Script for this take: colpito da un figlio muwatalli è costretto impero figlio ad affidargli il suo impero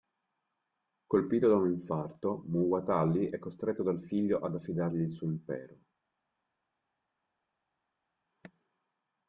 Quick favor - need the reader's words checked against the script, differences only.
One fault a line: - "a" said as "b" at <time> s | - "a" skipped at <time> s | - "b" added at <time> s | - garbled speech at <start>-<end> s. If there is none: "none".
- "figlio" said as "infarto" at 1.7 s
- "impero" said as "dal" at 3.8 s